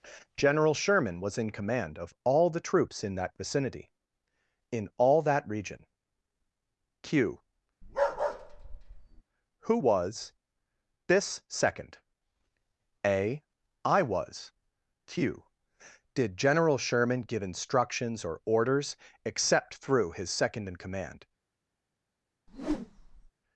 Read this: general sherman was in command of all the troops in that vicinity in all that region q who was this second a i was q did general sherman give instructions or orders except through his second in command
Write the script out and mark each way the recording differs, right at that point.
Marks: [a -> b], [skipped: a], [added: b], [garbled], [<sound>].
general sherman was in command of all the troops in that vicinity in all that region q [bark] who was this second a i was q did general sherman give instructions or orders except through his second in command [whoosh]